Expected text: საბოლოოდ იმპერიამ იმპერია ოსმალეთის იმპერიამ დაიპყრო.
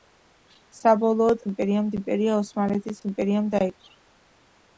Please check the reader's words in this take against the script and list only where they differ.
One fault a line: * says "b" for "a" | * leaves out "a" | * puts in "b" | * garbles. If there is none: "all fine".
all fine